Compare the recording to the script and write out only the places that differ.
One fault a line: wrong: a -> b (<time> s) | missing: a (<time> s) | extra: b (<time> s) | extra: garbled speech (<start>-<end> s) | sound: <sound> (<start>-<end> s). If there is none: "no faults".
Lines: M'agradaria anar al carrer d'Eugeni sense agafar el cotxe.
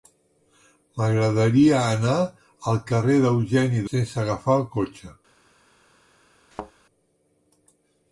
sound: thud (6.5-6.7 s)